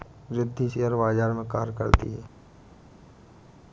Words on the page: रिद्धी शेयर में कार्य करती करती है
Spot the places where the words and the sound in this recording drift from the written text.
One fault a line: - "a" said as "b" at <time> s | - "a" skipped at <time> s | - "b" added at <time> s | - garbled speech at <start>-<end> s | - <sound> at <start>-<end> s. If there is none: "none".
- "बाजार" added at 0.9 s
- "करती" skipped at 2.1 s